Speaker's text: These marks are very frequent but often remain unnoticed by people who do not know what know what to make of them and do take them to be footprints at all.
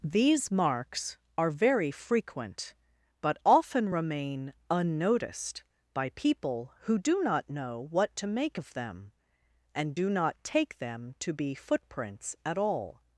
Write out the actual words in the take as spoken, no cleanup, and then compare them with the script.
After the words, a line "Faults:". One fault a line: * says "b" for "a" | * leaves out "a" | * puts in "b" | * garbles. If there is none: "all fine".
These marks are very frequent but often remain unnoticed by people who do not know what to make of them and do not take them to be footprints at all.
Faults:
* leaves out "know what"
* puts in "not"